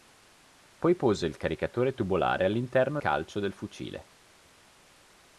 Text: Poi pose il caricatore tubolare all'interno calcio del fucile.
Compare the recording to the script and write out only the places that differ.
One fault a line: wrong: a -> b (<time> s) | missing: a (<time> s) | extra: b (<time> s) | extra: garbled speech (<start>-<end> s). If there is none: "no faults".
no faults